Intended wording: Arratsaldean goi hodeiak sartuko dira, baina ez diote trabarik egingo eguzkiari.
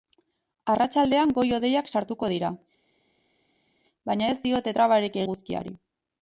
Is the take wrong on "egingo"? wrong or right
wrong